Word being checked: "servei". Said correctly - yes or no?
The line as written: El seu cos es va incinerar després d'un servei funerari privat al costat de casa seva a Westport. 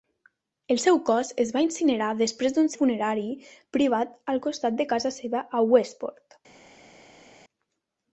no